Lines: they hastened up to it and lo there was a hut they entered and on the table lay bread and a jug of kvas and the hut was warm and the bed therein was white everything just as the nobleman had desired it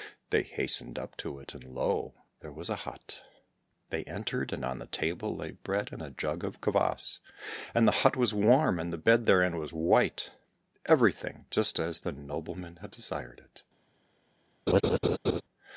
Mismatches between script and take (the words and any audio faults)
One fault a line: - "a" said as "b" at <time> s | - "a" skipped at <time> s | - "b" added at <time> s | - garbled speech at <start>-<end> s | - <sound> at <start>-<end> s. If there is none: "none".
- laugh at 14.7-15.4 s